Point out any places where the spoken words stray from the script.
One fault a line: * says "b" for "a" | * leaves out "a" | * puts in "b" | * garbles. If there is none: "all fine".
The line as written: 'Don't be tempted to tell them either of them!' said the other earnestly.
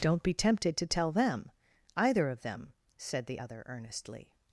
all fine